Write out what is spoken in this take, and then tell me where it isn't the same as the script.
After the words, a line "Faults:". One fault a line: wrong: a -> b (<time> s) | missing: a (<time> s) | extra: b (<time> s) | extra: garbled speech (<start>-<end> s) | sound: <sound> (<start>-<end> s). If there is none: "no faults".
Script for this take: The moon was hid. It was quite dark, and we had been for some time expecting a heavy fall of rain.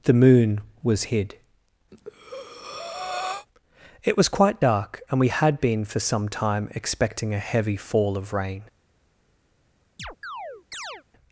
The moon was hid. It was quite dark, and we had been for some time expecting a heavy fall of rain.
Faults:
sound: breath (1.9-3.5 s)
sound: chirp (10.0-11.0 s)